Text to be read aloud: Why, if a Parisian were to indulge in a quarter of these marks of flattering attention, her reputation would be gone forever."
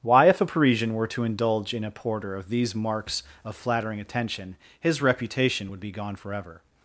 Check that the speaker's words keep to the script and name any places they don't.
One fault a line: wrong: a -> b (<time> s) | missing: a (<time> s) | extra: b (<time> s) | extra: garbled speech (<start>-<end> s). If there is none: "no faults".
wrong: quarter -> porter (1.9 s)
wrong: her -> his (4.8 s)